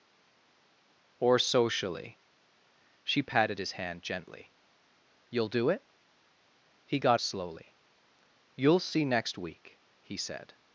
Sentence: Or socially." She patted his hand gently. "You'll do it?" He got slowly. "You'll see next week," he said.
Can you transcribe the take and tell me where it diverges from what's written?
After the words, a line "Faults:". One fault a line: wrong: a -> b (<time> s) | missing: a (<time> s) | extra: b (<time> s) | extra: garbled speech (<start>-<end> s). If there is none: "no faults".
Or socially." She patted his hand gently. "You'll do it?" He got slowly. "You'll see next week," he said.
Faults:
no faults